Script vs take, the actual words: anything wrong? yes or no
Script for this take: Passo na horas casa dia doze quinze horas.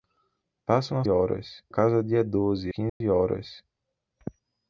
no